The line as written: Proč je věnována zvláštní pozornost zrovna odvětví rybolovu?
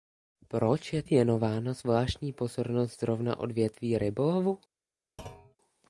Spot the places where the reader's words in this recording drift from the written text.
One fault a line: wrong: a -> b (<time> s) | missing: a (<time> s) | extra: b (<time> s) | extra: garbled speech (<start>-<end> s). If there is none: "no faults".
no faults